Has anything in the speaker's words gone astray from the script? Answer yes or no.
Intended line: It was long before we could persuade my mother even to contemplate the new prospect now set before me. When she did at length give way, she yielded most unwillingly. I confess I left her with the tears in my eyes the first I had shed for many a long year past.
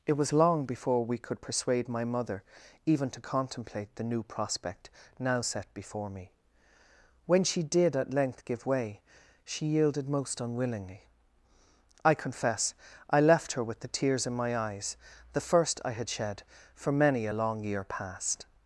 no